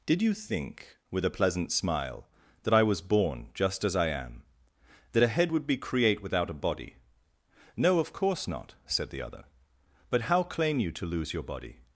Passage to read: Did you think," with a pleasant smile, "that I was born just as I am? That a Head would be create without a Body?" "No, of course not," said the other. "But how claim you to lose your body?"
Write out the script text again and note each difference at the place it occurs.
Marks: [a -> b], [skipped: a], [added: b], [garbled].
Did you think," with a pleasant smile, "that I was born just as I am? That a Head would be create without a Body?" "No, of course not," said the other. "But how claim you to lose your body?"